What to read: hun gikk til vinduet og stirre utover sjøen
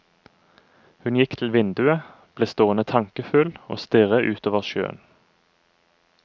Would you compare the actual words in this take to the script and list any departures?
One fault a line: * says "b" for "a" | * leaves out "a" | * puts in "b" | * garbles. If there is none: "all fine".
* puts in "ble stående tankefull"